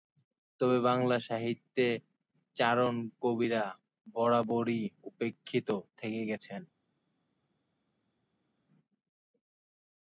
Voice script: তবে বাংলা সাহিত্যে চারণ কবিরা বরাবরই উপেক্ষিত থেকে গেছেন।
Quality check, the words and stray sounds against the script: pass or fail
pass